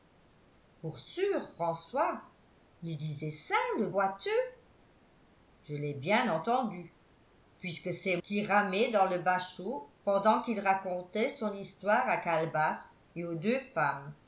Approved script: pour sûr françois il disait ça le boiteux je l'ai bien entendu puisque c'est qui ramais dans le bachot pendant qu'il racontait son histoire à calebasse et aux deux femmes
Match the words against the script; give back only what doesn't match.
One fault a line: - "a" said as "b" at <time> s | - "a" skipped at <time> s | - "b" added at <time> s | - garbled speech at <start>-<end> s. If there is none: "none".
none